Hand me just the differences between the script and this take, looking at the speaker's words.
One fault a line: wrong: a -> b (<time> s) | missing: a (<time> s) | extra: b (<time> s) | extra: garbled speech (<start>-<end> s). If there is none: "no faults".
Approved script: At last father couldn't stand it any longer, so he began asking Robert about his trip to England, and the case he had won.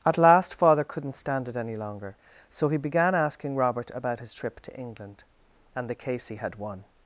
no faults